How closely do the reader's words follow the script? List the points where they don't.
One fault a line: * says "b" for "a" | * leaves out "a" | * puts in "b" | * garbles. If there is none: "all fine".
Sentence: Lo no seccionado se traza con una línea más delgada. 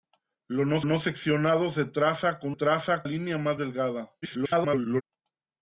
* puts in "no"
* says "traza" for "una"
* garbles